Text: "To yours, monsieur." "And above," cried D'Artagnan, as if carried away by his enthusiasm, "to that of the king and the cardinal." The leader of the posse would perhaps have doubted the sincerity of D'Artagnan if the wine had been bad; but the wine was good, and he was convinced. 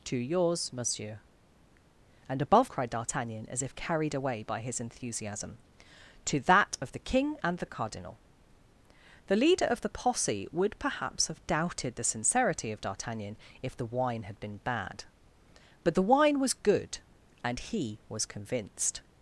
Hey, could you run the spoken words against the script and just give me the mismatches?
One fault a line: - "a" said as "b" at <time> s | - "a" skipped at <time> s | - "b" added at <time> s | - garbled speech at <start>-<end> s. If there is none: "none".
none